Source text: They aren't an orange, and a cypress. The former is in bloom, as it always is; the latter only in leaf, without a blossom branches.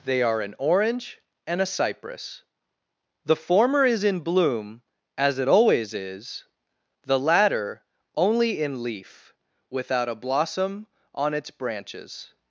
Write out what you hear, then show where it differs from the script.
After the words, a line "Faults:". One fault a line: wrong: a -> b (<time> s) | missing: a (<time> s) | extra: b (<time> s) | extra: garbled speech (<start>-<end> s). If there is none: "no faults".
They are an orange, and a cypress. The former is in bloom, as it always is; the latter only in leaf, without a blossom on its branches.
Faults:
wrong: aren't -> are (0.2 s)
extra: on its (11.1 s)